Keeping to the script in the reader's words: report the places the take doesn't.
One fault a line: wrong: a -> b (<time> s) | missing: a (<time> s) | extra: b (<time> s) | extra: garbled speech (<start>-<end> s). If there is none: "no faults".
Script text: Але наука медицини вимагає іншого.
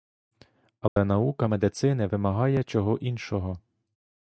extra: чого (2.6 s)